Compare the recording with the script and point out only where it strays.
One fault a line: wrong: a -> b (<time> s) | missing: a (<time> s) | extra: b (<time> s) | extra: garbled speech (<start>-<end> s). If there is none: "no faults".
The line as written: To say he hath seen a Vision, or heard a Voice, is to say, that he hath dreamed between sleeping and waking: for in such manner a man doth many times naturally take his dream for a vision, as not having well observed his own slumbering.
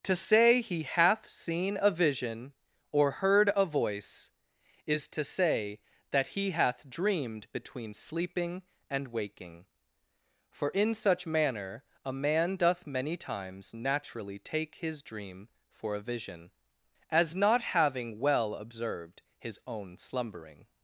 no faults